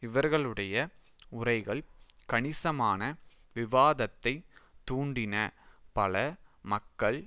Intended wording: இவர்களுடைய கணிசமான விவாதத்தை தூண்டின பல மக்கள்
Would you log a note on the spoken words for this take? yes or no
yes